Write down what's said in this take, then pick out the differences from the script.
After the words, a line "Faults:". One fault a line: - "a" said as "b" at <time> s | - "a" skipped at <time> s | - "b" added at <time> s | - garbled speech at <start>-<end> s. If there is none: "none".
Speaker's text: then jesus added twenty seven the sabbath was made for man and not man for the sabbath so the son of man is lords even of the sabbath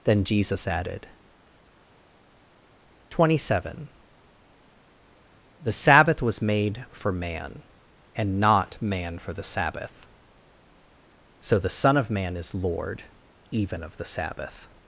then jesus added twenty seven the sabbath was made for man and not man for the sabbath so the son of man is lord even of the sabbath
Faults:
- "lords" said as "lord" at 12.5 s